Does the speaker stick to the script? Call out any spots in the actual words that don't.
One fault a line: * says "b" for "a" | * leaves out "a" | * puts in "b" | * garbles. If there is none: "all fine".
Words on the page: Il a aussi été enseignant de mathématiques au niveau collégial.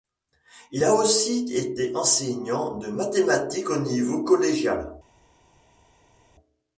all fine